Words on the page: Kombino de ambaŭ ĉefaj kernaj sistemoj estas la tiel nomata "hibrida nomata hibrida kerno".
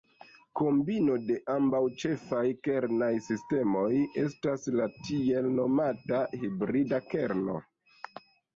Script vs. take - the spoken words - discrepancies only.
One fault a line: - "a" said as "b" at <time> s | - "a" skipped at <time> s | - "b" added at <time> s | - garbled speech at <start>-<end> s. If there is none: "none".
- "nomata hibrida" skipped at 7.1 s